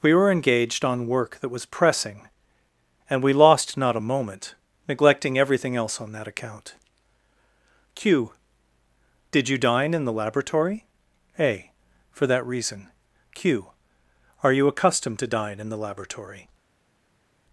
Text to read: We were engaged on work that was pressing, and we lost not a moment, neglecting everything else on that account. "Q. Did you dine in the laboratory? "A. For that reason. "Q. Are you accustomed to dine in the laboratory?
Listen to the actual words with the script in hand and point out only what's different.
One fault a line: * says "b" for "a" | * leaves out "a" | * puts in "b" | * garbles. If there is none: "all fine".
all fine